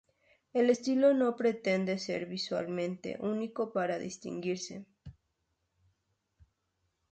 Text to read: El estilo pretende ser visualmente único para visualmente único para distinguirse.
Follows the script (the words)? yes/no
no